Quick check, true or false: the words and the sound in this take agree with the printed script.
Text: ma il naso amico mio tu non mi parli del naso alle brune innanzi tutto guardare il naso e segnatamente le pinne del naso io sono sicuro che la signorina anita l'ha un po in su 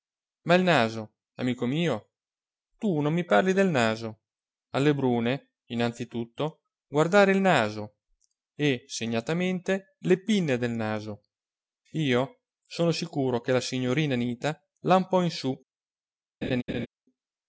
false